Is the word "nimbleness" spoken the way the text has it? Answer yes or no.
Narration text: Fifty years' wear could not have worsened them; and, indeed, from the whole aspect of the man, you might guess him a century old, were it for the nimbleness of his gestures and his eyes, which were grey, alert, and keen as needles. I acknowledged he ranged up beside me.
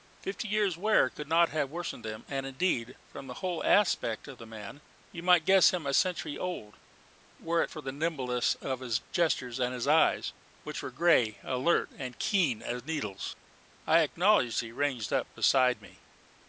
yes